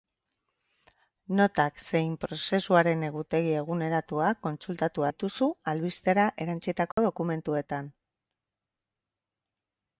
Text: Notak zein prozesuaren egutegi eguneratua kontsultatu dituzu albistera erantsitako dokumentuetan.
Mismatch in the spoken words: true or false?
false